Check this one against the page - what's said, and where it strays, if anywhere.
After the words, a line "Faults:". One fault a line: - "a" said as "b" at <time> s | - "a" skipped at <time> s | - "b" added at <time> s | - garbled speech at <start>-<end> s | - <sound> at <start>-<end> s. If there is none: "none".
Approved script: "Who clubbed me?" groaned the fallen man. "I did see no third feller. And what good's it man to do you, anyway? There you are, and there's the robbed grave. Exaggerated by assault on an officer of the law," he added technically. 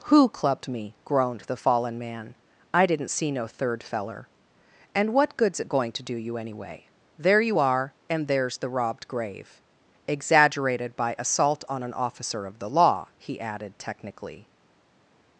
"Who clubbed me?" groaned the fallen man. "I didn't see no third feller. And what good's it going to do you, anyway? There you are, and there's the robbed grave. Exaggerated by assault on an officer of the law," he added technically.
Faults:
- "did" said as "didn't" at 2.9 s
- "man" said as "going" at 5.7 s